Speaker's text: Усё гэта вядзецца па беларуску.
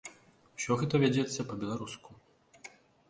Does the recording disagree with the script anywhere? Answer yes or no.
no